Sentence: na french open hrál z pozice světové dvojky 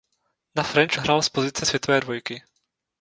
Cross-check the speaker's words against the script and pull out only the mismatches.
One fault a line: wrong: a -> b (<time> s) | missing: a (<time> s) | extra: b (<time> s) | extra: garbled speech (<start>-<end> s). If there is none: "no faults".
missing: open (1.0 s)